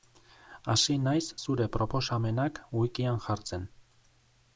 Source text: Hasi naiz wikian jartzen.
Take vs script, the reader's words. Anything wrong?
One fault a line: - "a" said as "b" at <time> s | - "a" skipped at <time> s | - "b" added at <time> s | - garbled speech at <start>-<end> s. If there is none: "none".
- "zure proposamenak" added at 1.4 s